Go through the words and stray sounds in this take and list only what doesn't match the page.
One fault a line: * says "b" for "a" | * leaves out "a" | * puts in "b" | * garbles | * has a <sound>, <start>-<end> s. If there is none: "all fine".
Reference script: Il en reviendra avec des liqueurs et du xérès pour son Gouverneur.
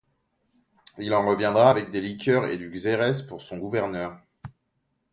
all fine